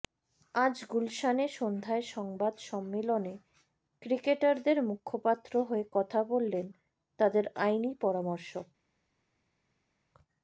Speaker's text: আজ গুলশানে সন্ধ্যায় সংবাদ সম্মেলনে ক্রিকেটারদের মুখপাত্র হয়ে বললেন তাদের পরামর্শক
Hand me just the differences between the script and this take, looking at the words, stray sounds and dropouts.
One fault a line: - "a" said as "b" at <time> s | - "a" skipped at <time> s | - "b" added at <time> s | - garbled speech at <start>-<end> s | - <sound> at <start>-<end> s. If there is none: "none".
- "কথা" added at 5.9 s
- "আইনি" added at 7.6 s